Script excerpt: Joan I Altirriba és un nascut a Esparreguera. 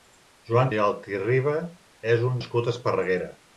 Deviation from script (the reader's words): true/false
false